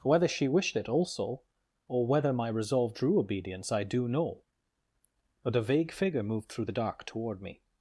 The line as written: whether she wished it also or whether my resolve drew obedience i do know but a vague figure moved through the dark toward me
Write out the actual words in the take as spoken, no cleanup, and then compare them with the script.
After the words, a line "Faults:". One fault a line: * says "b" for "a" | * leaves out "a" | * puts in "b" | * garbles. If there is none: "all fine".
whether she wished it also or whether my resolve drew obedience i do know but a vague figure moved through the dark toward me
Faults:
all fine